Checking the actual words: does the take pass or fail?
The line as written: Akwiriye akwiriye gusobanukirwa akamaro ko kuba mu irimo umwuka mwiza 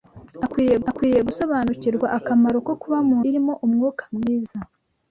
pass